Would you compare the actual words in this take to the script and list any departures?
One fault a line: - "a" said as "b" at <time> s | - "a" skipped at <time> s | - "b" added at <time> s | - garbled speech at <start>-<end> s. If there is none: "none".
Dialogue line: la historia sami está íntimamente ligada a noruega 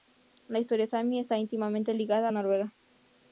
none